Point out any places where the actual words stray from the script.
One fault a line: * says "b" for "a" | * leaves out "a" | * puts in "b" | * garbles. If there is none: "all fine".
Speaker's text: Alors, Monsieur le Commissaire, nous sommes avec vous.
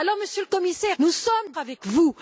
all fine